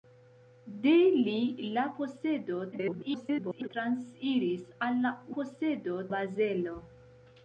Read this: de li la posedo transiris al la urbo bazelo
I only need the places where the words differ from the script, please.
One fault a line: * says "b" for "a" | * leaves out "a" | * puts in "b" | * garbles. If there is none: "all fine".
* garbles
* says "posedo" for "urbo"